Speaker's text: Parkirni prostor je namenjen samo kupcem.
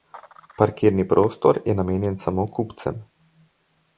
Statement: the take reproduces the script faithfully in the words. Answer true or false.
true